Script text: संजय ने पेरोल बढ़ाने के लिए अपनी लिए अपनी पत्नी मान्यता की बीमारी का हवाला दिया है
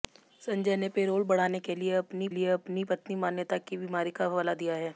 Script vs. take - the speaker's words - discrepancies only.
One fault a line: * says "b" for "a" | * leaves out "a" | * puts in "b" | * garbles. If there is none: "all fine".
all fine